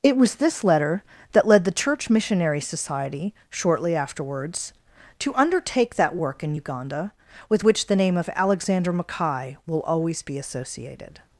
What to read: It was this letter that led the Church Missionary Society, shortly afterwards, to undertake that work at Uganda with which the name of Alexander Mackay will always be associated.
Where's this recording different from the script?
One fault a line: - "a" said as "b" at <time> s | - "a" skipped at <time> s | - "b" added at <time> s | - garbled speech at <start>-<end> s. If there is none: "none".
- "at" said as "in" at 6.4 s